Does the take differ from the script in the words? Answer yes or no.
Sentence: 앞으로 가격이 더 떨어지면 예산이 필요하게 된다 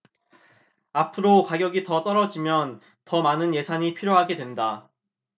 yes